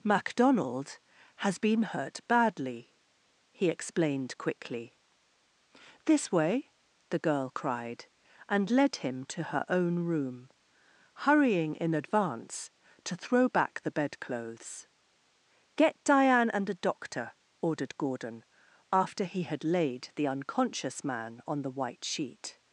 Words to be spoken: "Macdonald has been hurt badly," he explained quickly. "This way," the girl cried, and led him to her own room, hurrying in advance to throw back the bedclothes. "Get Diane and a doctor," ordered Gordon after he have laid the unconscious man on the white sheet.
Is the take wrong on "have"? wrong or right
wrong